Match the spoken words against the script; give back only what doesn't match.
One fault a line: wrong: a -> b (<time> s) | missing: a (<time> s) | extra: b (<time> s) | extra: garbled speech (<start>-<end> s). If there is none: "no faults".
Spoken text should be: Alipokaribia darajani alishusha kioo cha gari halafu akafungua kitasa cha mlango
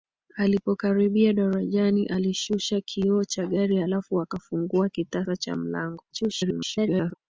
extra: garbled speech (6.1-7.1 s)